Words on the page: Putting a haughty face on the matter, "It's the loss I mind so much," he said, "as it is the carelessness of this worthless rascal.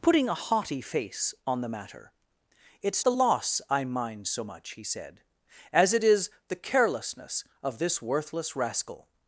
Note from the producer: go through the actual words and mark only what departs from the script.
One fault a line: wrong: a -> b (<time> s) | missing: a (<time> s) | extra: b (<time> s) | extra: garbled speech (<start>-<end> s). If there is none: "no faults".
no faults